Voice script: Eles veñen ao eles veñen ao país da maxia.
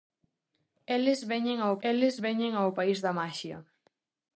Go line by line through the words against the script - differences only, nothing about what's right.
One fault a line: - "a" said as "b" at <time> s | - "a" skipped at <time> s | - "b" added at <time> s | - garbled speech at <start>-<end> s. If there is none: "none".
none